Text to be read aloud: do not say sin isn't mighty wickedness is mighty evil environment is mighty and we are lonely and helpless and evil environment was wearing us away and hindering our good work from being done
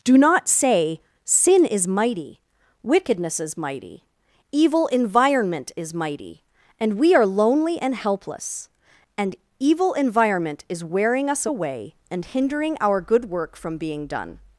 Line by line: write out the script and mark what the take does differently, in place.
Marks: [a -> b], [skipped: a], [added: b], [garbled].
do not say sin [isn't -> is] mighty wickedness is mighty evil environment is mighty and we are lonely and helpless and evil environment [was -> is] wearing us away and hindering our good work from being done